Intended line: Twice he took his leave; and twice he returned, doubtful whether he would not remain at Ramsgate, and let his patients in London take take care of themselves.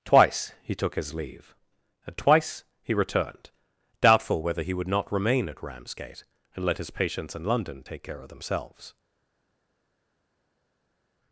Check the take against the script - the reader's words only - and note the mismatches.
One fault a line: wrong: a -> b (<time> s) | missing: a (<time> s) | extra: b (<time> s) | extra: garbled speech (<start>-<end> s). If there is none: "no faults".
missing: take (8.0 s)